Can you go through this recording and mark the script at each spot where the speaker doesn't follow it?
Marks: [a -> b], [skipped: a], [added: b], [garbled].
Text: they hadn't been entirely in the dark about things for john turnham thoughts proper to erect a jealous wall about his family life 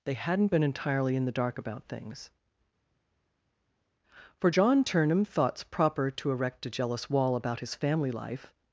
they hadn't been entirely in the dark about things for john turnham thoughts proper to erect a jealous wall about his family life